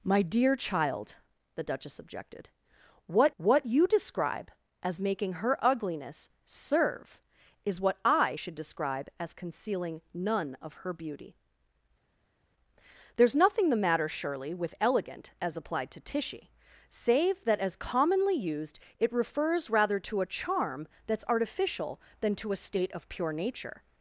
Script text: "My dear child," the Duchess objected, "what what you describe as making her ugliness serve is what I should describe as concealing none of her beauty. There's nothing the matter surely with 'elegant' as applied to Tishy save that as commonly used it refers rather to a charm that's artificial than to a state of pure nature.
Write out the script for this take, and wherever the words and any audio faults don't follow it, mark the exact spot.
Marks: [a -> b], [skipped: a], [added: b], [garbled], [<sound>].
"My dear child," the Duchess objected, "what what you describe as making her ugliness serve is what I should describe as concealing none of her beauty. There's nothing the matter surely with 'elegant' as applied to Tishy save that as commonly used it refers rather to a charm that's artificial than to a state of pure nature.